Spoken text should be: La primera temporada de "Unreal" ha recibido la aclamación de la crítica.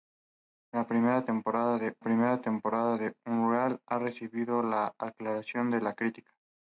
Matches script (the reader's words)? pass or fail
fail